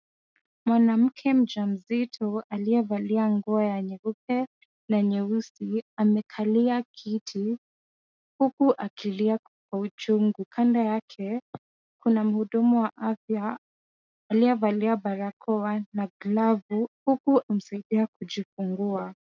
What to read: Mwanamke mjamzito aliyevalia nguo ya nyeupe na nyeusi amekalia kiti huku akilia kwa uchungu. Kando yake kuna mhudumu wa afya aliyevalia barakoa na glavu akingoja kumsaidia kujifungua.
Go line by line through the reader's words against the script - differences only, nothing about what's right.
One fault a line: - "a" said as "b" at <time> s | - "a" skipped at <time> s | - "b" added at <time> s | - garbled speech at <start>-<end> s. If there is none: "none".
- "akingoja" said as "huku" at 17.1 s